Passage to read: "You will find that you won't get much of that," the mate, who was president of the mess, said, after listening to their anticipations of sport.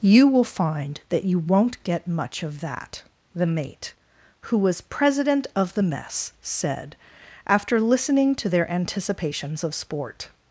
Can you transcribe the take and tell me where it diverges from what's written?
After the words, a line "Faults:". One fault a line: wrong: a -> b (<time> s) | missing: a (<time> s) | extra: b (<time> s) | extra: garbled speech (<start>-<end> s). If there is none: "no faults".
"You will find that you won't get much of that," the mate, who was president of the mess, said, after listening to their anticipations of sport.
Faults:
no faults